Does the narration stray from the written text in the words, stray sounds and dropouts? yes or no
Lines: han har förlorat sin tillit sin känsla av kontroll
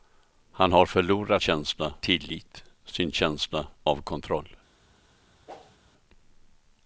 yes